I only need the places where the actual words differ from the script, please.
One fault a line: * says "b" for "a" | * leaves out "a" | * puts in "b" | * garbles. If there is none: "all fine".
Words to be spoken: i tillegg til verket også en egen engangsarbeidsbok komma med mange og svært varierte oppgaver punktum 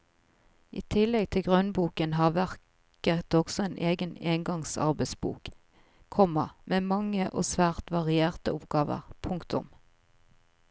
* puts in "grunnboken har"